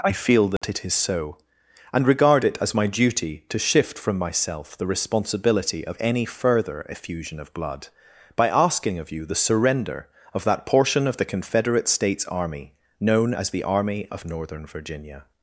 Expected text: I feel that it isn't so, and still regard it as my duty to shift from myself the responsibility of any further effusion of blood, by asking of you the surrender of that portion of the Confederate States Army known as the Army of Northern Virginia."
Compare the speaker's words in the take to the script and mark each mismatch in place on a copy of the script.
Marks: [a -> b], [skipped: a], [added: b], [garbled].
I feel that it [isn't -> is] so, and [skipped: still] regard it as my duty to shift from myself the responsibility of any further effusion of blood, by asking of you the surrender of that portion of the Confederate States Army known as the Army of Northern Virginia."